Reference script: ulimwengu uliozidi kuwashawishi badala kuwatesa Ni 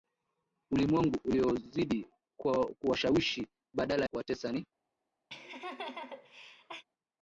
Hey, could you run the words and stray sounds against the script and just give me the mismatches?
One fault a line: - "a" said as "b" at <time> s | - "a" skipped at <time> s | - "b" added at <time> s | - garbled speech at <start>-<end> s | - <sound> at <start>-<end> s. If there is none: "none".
- laugh at 5.3-6.8 s